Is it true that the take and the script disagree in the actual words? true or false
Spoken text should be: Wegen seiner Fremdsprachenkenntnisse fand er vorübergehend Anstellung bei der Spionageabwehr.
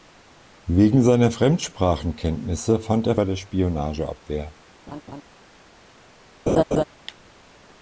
true